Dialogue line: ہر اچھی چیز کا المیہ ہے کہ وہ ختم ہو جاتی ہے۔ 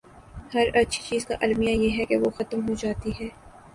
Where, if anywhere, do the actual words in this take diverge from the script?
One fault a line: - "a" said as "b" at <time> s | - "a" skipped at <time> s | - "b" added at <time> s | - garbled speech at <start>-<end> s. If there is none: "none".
- "یہ" added at 1.7 s